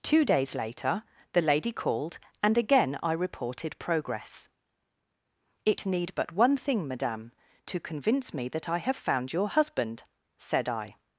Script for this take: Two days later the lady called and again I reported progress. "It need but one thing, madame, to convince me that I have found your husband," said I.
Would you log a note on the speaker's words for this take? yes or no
no